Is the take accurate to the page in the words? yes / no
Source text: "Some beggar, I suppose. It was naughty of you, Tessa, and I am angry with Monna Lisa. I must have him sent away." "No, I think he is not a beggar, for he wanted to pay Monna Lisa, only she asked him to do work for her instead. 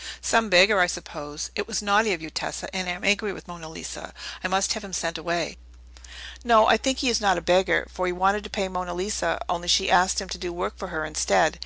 yes